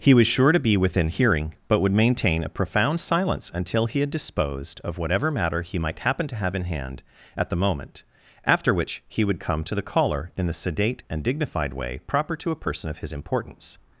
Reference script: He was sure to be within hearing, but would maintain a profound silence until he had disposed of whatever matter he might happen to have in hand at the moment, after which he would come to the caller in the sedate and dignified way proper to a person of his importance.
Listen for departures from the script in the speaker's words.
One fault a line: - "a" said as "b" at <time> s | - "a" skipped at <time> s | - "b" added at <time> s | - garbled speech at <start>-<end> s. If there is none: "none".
none